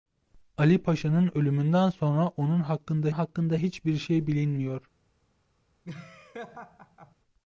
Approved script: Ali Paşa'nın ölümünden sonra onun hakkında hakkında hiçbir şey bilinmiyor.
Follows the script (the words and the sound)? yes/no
no